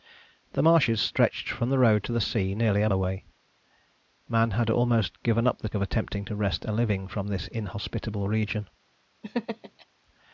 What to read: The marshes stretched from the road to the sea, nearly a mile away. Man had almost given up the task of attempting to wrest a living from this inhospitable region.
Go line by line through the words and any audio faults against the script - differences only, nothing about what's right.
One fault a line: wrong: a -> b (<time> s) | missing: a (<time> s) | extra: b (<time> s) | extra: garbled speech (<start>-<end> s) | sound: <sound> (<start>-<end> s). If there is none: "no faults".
missing: mile (2.9 s)
missing: task (5.7 s)
sound: laugh (9.2-9.9 s)